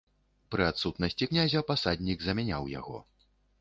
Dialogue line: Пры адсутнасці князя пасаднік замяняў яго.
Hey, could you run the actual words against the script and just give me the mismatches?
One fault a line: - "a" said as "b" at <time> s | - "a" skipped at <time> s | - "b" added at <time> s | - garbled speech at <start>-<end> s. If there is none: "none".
none